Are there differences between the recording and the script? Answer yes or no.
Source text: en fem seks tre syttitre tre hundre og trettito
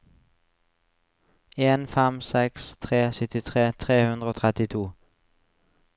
no